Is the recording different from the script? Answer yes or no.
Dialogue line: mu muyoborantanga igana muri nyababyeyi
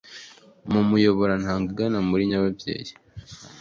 no